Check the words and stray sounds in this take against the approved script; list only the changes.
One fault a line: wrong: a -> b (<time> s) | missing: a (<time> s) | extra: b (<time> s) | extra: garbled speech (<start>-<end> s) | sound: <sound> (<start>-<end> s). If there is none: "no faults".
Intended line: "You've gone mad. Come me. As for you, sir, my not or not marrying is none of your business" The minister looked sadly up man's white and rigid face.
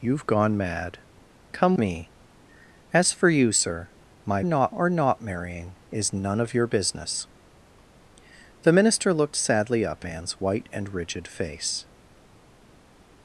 no faults